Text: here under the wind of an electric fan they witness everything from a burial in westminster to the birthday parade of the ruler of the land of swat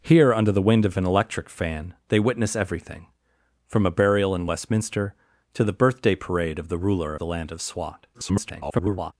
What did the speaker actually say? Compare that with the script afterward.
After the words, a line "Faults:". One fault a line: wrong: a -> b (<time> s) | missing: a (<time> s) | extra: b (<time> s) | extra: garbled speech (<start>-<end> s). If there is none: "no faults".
here under the wind of an electric fan they witness everything from a burial in westminster to the birthday parade of the ruler the land of swat [garbled]
Faults:
missing: of (7.1 s)
extra: garbled speech (8.1-9.1 s)